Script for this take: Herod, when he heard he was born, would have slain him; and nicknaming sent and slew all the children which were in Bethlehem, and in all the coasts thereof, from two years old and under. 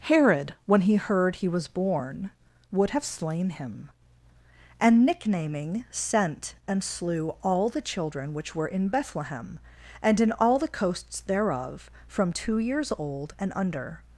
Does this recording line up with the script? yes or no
yes